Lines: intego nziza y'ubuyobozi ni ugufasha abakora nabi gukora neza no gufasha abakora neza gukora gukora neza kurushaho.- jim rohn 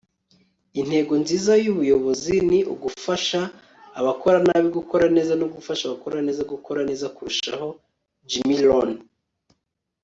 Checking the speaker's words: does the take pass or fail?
fail